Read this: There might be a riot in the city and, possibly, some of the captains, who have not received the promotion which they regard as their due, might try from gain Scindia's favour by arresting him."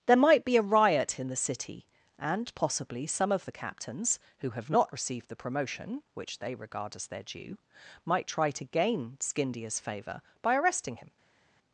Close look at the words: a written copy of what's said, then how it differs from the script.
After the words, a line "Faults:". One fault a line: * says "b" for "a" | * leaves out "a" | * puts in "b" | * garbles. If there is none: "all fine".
There might be a riot in the city and, possibly, some of the captains, who have not received the promotion which they regard as their due, might try to gain Scindia's favour by arresting him."
Faults:
* says "to" for "from"